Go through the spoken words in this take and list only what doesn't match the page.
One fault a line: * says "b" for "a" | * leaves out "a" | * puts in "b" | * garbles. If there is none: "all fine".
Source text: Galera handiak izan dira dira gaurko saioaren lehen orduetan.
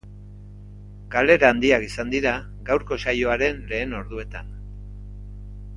* leaves out "dira"